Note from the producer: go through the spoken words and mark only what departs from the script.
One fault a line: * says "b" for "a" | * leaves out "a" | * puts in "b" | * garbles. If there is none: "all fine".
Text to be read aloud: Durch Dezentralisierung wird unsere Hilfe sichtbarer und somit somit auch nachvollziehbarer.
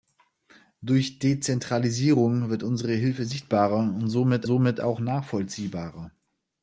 all fine